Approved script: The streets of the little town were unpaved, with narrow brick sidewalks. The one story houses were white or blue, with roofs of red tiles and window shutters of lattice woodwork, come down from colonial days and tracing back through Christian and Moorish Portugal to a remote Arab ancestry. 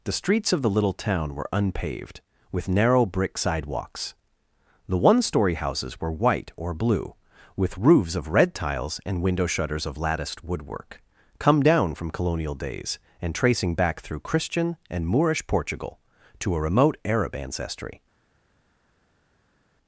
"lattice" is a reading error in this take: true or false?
true